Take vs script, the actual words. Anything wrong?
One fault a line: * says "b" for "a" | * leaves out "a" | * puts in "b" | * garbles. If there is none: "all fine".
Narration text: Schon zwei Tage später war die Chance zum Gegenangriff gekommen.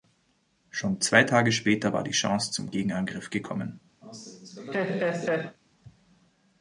all fine